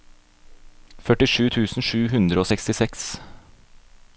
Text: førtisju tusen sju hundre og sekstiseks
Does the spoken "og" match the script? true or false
true